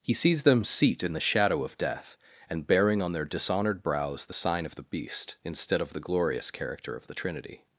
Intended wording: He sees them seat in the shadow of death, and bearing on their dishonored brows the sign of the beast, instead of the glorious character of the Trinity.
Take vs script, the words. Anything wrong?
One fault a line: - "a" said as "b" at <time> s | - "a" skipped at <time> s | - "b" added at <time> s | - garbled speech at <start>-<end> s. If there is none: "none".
none